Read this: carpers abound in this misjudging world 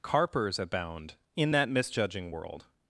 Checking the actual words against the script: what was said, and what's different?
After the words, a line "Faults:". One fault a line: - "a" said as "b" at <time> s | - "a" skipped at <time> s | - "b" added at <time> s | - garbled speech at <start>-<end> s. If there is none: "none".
carpers abound in that misjudging world
Faults:
- "this" said as "that" at 1.5 s